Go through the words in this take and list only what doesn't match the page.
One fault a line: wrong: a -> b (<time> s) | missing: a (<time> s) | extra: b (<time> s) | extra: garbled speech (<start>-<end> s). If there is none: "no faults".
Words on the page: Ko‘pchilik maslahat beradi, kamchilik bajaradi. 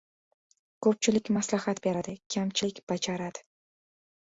no faults